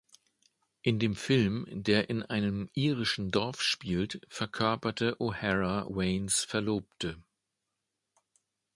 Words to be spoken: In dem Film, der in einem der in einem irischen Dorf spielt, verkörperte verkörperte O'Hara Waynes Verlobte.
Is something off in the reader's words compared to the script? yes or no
yes